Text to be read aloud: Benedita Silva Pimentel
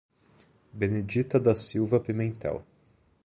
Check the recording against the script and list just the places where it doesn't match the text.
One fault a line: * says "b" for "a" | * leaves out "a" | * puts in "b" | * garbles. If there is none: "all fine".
* puts in "da"